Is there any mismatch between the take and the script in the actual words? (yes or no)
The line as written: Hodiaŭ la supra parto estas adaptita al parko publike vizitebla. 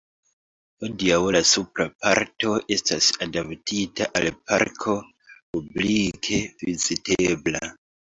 no